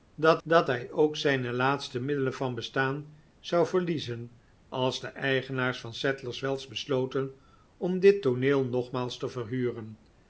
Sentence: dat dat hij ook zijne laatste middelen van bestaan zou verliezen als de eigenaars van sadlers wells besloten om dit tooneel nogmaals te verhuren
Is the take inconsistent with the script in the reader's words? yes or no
no